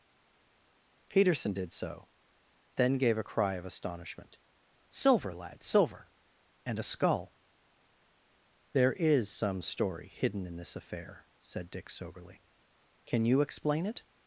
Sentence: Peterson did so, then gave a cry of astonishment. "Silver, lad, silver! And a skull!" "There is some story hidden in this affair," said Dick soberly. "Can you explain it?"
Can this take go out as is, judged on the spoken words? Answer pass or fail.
pass